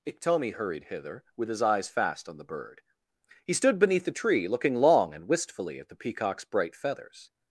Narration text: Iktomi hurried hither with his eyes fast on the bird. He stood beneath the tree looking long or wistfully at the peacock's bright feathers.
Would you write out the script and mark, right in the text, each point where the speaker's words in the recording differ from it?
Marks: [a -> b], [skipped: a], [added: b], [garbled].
Iktomi hurried hither with his eyes fast on the bird. He stood beneath the tree looking long [or -> and] wistfully at the peacock's bright feathers.